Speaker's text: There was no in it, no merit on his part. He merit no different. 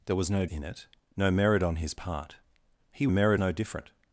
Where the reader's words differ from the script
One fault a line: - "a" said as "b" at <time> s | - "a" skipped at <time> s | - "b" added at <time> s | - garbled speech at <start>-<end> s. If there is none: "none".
none